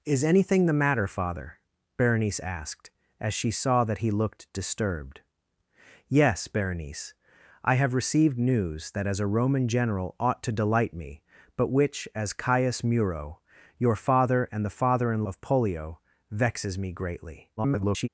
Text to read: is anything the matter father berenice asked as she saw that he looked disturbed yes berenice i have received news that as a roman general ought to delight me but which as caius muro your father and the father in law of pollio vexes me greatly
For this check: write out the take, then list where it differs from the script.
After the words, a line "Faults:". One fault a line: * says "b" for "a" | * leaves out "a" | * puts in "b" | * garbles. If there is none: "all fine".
is anything the matter father berenice asked as she saw that he looked disturbed yes berenice i have received news that as a roman general ought to delight me but which as caius muro your father and the father in of pollio vexes me greatly [garbled]
Faults:
* leaves out "law"
* garbles